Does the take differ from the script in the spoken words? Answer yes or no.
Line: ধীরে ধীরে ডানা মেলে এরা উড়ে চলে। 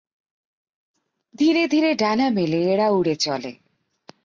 no